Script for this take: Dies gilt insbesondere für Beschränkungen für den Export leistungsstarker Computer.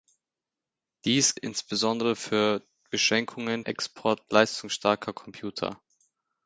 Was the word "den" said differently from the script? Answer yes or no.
yes